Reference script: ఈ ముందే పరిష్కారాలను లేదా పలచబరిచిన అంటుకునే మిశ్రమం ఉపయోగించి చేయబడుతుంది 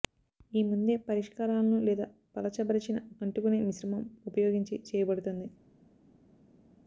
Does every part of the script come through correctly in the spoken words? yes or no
yes